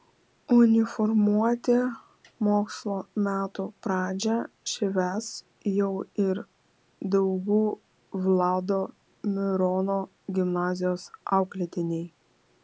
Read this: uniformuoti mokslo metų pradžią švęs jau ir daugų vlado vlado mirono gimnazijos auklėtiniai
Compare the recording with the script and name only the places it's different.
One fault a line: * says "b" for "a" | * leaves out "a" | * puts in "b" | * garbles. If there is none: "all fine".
* leaves out "vlado"